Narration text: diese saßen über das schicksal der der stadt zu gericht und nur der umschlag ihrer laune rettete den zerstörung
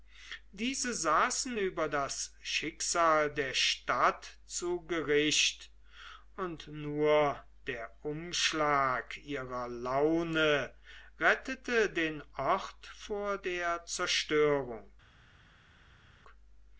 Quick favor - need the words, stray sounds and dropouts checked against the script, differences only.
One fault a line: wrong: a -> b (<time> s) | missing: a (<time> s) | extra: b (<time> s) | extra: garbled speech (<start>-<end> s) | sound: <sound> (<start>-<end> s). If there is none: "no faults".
missing: der (3.5 s)
extra: ort vor der (12.4 s)